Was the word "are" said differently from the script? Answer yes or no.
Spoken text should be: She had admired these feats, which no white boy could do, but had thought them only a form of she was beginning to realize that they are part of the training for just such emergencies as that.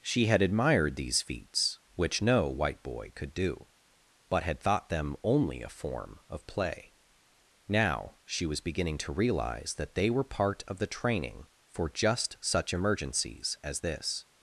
yes